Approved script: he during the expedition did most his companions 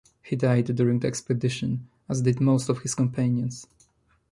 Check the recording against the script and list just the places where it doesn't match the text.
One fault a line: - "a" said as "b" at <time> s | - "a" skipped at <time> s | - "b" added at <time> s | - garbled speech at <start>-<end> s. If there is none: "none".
- "died" added at 0.3 s
- "as" added at 2.1 s
- "of" added at 2.7 s